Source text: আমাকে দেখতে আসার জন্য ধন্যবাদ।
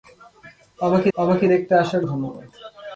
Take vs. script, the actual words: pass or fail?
fail